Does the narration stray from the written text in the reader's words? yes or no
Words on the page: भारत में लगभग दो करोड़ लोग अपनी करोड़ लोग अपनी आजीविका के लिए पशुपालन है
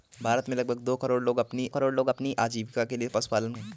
no